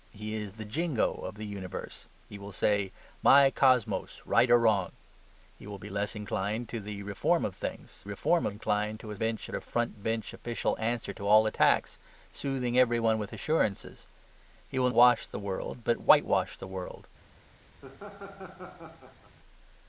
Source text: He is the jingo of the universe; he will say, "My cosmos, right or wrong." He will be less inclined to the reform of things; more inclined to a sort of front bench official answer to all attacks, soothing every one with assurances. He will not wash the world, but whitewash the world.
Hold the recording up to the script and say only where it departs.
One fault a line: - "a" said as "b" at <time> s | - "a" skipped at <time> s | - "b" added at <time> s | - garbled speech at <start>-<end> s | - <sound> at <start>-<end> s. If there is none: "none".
- "more" said as "reform" at 8.0 s
- "sort" said as "bench" at 9.2 s
- "not" skipped at 14.9 s
- laugh at 17.8-19.4 s